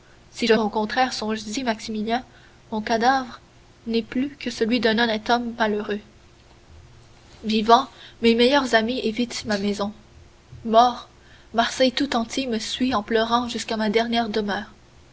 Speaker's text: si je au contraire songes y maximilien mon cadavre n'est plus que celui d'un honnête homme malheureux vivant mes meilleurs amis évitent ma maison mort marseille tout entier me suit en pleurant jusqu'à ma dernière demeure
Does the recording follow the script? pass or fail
pass